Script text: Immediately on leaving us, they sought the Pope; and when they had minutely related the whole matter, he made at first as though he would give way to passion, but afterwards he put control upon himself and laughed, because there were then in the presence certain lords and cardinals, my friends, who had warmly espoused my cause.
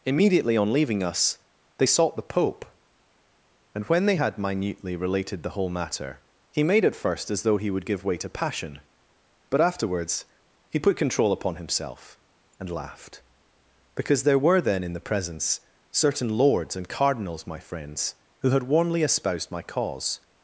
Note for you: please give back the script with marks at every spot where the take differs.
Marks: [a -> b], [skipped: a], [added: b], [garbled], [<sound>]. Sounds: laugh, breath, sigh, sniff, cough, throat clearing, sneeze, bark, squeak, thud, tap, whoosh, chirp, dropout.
Immediately on leaving us, they sought the Pope; and when they had minutely related the whole matter, he made at first as though he would give way to passion, but afterwards he put control upon himself and laughed, because there were then in the presence certain lords and cardinals, my friends, who had warmly espoused my cause.